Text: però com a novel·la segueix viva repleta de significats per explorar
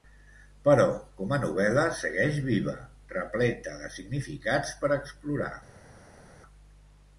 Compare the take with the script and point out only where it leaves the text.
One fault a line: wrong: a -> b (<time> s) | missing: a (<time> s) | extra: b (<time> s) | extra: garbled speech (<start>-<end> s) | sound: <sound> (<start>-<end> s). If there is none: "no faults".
no faults